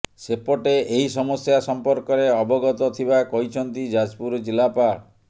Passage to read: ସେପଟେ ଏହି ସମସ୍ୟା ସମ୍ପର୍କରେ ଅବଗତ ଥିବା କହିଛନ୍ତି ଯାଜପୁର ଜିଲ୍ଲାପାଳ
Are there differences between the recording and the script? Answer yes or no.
no